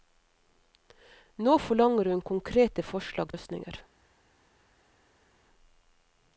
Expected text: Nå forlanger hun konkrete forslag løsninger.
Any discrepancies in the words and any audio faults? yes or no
no